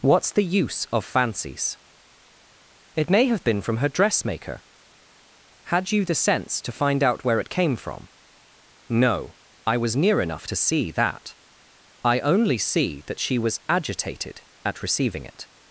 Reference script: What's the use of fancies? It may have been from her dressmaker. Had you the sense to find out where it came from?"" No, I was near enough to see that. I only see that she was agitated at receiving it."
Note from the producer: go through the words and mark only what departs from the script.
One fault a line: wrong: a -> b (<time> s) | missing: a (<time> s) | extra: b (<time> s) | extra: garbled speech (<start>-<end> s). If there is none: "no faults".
no faults